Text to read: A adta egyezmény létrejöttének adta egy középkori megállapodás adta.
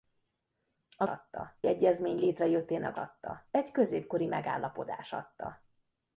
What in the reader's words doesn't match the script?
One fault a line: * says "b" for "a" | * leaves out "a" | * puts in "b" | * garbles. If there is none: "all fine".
all fine